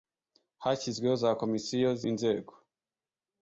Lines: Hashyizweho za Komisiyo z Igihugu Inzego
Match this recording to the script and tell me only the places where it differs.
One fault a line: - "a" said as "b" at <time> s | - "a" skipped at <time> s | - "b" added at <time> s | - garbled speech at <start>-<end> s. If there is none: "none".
- "Igihugu" skipped at 2.0 s